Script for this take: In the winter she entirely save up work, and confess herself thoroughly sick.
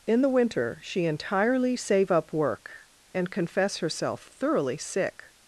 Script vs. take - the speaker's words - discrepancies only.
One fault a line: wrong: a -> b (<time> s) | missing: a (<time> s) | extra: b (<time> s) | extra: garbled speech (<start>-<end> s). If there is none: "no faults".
no faults